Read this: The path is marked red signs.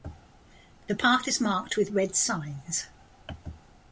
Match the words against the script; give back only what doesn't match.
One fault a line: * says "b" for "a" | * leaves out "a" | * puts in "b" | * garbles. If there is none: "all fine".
* puts in "with"